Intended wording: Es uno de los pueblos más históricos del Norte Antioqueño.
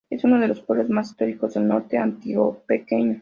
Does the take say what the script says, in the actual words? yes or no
yes